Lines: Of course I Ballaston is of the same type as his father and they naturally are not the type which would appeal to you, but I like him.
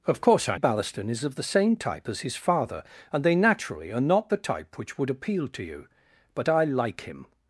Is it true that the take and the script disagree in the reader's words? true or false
false